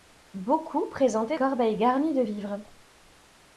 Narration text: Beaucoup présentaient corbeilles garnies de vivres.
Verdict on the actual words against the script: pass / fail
pass